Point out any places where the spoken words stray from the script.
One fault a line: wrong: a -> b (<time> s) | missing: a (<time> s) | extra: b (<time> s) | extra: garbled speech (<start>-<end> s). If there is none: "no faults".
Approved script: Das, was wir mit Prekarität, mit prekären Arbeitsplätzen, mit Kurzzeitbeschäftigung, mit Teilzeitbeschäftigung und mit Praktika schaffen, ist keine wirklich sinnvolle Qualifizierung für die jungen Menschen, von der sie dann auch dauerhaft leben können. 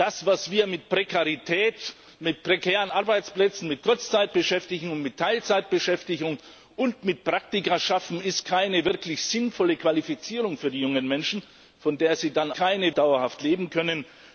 wrong: auch -> keine (12.5 s)